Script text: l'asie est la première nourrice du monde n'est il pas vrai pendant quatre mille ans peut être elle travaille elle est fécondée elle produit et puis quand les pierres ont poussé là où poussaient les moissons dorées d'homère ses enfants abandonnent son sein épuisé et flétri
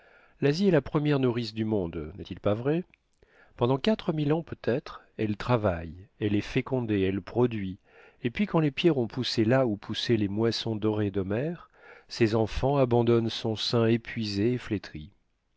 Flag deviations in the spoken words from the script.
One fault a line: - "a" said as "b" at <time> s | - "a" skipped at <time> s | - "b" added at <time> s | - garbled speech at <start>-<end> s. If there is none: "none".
none